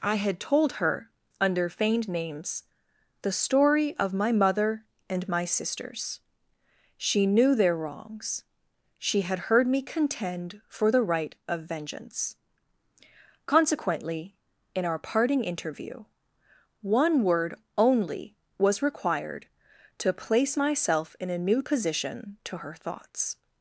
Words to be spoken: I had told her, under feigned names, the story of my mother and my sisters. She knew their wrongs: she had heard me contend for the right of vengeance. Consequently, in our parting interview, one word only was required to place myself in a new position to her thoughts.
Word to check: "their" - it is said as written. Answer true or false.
true